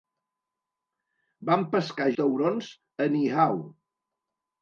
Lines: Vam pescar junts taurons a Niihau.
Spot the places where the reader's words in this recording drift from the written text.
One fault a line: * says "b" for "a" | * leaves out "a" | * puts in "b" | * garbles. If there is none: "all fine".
* leaves out "junts"